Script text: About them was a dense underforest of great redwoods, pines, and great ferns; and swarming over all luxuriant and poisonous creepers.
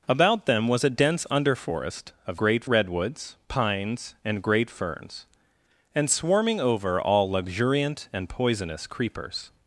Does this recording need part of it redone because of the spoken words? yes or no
no